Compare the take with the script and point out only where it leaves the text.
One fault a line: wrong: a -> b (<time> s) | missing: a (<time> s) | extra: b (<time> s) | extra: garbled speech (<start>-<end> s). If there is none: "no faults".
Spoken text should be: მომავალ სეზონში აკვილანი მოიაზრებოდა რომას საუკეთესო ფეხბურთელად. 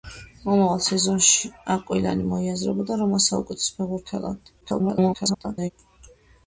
extra: garbled speech (4.6-5.7 s)